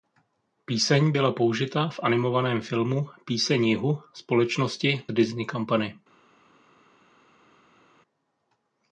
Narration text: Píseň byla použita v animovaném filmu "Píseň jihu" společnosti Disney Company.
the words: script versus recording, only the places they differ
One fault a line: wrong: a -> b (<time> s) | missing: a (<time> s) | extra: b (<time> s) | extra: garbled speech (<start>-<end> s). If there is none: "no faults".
no faults